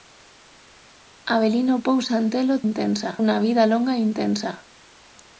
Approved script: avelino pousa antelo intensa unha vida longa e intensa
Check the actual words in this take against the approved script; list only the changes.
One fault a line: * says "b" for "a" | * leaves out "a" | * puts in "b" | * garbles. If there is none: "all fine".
all fine